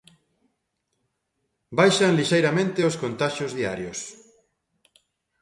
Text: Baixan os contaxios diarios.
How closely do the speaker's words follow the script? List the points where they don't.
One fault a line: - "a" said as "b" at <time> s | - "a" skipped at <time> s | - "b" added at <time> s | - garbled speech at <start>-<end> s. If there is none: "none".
- "lixeiramente" added at 2.2 s